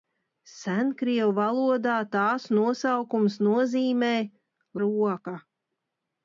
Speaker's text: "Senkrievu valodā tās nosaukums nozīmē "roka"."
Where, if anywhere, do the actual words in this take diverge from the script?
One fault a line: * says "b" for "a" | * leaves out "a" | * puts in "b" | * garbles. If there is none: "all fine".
all fine